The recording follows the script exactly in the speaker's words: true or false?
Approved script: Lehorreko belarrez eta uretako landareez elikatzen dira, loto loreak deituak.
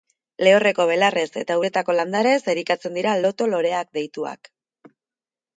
true